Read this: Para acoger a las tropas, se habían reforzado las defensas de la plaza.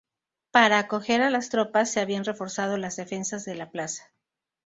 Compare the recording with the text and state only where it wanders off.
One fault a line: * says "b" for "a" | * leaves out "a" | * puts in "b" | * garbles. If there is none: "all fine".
all fine